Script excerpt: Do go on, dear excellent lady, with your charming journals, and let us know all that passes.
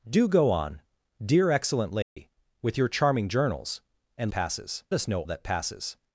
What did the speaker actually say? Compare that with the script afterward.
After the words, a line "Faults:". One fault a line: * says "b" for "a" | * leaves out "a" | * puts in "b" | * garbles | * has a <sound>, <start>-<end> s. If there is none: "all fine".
Do go on, dear excellent lady, with your charming journals, and passes us know that passes.
Faults:
* has a dropout, 2.0-2.2 s
* says "passes" for "let"
* leaves out "all"